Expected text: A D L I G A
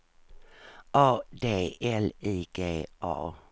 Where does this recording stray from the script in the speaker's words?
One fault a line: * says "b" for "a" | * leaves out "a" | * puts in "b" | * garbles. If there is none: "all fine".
all fine